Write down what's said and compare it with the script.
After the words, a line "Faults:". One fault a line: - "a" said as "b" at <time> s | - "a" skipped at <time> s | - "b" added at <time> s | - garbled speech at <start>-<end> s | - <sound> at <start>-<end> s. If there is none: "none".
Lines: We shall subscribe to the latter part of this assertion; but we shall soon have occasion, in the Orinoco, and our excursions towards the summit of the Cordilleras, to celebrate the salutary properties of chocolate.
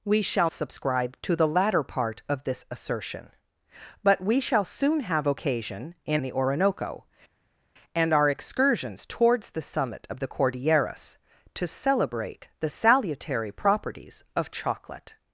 We shall subscribe to the latter part of this assertion; but we shall soon have occasion, in the Orinoco, and our excursions towards the summit of the Cordilleras, to celebrate the salutary properties of chocolate.
Faults:
none